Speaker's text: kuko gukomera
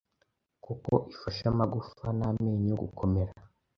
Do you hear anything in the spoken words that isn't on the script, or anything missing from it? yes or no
yes